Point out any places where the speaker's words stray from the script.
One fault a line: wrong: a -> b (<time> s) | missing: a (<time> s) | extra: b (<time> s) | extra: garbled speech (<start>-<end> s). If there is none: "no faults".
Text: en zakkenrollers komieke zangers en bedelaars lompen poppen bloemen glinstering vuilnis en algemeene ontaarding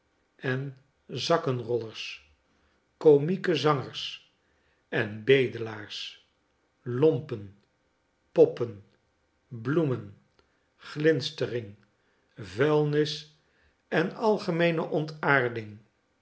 no faults